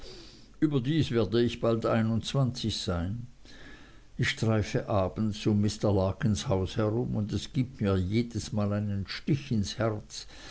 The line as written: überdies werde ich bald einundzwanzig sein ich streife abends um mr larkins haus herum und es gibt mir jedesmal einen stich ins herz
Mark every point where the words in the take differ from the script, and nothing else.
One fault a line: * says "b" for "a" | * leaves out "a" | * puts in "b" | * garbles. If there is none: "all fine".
all fine